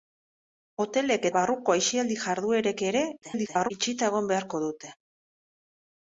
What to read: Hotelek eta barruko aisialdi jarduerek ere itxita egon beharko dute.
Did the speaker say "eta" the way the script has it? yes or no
no